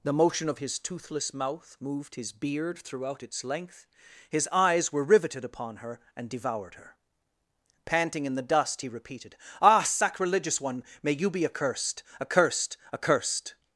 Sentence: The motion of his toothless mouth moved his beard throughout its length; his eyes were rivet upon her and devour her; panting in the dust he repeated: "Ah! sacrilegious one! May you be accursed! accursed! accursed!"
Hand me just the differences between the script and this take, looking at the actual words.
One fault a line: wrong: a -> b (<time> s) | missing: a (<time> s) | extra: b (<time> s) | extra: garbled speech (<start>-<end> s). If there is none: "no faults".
wrong: rivet -> riveted (5.0 s)
wrong: devour -> devoured (6.3 s)